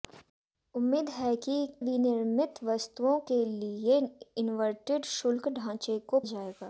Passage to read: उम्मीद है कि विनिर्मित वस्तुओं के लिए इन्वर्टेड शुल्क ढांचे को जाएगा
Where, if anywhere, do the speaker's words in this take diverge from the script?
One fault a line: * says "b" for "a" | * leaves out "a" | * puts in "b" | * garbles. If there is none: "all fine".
all fine